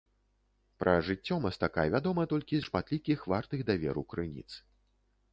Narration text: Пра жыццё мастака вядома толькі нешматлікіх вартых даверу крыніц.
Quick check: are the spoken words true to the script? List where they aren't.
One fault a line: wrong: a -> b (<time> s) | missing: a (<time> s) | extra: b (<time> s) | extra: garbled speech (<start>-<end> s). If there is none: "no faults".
no faults